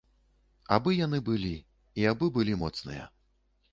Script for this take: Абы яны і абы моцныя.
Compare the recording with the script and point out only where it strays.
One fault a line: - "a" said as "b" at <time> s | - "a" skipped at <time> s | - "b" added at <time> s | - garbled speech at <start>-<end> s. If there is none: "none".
- "былі" added at 1.3 s
- "былі" added at 2.4 s